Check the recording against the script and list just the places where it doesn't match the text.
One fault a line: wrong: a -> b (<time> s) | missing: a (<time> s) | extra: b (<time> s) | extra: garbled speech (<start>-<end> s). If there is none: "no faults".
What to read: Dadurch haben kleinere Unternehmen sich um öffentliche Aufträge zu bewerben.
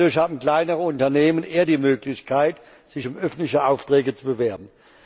extra: eher die Möglichkeit (1.4 s)